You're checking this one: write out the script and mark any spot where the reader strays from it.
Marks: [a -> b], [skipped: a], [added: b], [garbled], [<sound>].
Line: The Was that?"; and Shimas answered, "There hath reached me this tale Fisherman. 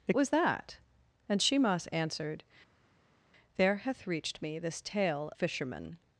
The Was that?"; and Shimas answered, "There hath reached me this tale Fisherman.